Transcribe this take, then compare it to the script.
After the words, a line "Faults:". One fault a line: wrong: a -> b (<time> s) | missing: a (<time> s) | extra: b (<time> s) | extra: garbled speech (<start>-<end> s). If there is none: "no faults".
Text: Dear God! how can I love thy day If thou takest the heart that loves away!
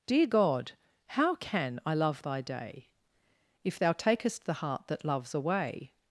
Dear God! how can I love thy day If thou takest the heart that loves away!
Faults:
no faults